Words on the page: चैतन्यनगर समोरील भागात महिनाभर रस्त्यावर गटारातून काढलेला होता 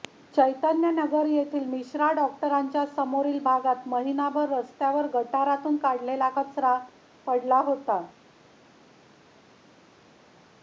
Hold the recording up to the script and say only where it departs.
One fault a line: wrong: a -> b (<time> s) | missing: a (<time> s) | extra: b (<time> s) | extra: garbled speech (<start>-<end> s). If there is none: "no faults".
extra: येथील मिश्रा डॉक्टरांच्या (1.2 s)
extra: कचरा पडला (6.4 s)